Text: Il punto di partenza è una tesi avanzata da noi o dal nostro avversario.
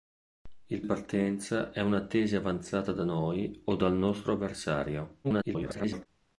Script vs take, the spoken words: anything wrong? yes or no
yes